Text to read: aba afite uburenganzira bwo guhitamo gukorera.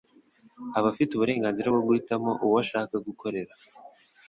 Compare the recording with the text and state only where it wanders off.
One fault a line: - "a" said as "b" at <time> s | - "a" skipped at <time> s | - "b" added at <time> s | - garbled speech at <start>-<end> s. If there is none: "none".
- "uwo ashaka" added at 2.4 s